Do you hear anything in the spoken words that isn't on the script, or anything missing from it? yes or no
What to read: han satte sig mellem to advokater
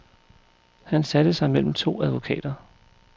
no